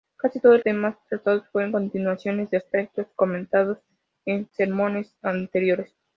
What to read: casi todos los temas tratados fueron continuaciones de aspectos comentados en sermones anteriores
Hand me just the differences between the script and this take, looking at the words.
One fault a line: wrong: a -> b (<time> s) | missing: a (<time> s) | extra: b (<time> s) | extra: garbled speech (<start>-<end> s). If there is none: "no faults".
missing: los (0.6 s)